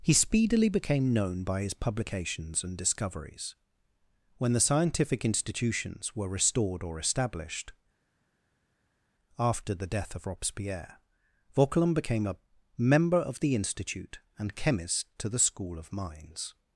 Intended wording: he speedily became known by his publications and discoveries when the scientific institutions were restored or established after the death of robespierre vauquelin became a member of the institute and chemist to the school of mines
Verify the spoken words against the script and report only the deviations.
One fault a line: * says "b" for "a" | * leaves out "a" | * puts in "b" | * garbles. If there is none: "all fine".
all fine